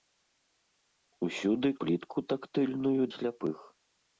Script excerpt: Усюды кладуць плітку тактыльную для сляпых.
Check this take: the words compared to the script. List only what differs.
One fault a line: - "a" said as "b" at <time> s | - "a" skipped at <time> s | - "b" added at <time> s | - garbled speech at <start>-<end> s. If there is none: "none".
- "кладуць" skipped at 1.7 s
- "для" skipped at 3.0 s